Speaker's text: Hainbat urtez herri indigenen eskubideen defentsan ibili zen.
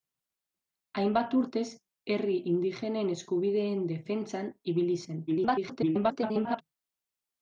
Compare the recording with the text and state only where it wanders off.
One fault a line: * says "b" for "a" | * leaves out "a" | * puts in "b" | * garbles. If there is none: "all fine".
* garbles